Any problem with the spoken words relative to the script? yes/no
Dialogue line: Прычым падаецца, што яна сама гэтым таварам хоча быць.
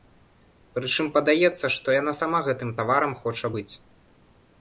no